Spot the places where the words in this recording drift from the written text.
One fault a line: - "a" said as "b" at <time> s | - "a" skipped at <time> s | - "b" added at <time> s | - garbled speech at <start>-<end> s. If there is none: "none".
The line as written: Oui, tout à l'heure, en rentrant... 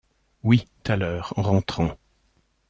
- "tout" skipped at 0.7 s